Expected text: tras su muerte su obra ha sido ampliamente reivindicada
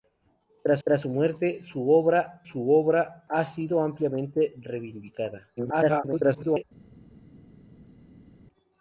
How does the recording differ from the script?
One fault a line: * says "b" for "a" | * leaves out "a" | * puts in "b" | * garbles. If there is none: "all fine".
* puts in "tras"
* puts in "su obra"
* garbles